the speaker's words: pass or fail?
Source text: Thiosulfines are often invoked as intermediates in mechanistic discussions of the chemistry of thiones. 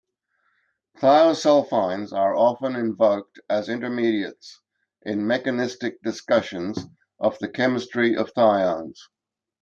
pass